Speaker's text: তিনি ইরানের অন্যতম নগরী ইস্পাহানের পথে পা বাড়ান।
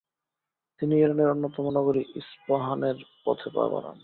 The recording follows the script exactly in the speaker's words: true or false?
true